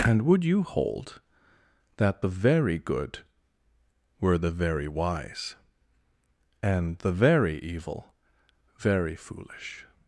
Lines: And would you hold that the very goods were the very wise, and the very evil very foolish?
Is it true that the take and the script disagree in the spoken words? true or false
true